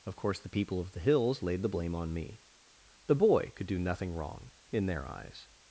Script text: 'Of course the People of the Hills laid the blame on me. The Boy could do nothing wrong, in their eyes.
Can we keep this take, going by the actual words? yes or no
yes